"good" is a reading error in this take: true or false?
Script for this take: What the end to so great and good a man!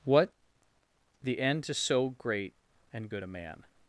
false